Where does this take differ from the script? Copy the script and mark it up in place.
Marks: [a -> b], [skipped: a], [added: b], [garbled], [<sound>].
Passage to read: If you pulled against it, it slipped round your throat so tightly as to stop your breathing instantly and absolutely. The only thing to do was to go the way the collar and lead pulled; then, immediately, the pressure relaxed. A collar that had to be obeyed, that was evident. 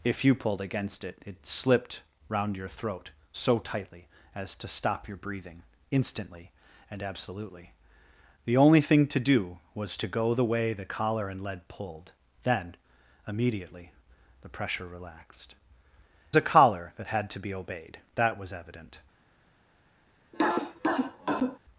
If you pulled against it, it slipped round your throat so tightly as to stop your breathing instantly and absolutely. The only thing to do was to go the way the collar and lead pulled; then, immediately, the pressure relaxed. A collar that had to be obeyed, that was evident. [cough]